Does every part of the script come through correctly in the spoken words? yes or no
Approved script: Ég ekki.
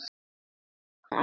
yes